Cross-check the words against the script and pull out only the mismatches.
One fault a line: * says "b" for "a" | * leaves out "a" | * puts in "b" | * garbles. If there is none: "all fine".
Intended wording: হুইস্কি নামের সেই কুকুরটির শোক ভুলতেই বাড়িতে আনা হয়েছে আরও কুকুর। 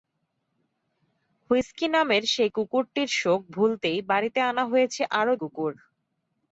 all fine